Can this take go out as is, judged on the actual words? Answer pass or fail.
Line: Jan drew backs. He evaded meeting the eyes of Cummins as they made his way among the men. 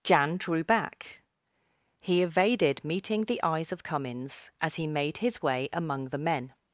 fail